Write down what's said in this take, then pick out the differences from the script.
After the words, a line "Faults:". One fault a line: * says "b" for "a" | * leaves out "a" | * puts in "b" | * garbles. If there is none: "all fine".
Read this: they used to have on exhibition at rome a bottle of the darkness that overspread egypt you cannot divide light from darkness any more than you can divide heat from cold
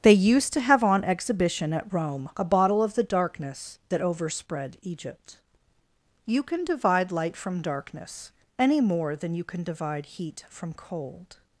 they used to have on exhibition at rome a bottle of the darkness that overspread egypt you can divide light from darkness any more than you can divide heat from cold
Faults:
* says "can" for "cannot"